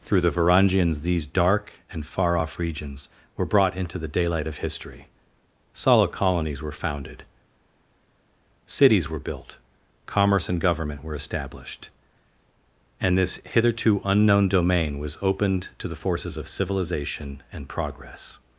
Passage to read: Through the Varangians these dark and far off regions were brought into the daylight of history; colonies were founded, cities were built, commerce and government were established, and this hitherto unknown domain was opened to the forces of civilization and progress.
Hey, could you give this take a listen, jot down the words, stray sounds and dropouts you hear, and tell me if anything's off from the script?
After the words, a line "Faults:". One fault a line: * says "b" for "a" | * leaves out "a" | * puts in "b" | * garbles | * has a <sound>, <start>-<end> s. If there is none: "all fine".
Through the Varangians these dark and far off regions were brought into the daylight of history; solid colonies were founded, cities were built, commerce and government were established, and this hitherto unknown domain was opened to the forces of civilization and progress.
Faults:
* puts in "solid"